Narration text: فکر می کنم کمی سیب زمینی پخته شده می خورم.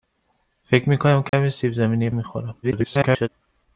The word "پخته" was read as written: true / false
false